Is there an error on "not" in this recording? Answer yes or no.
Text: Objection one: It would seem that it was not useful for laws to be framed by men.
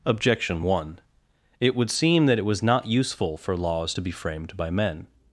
no